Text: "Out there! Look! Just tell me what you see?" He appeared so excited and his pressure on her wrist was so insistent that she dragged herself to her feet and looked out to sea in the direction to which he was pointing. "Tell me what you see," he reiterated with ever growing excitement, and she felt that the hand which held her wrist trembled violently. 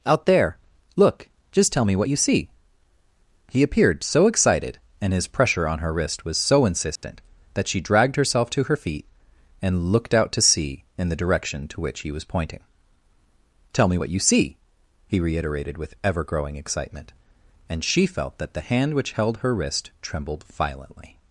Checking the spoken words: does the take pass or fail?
pass